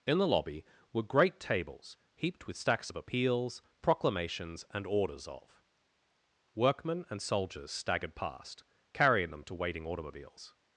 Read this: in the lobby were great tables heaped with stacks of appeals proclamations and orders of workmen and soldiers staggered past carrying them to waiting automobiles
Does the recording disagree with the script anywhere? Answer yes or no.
no